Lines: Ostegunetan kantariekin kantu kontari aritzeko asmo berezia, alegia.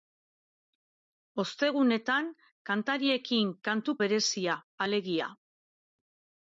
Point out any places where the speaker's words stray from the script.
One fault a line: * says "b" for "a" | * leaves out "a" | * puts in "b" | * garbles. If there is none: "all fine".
* leaves out "kontari aritzeko asmo"